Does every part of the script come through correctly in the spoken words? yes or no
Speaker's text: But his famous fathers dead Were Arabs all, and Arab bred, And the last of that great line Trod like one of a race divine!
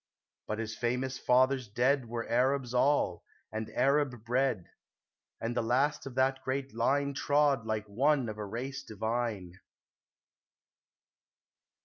yes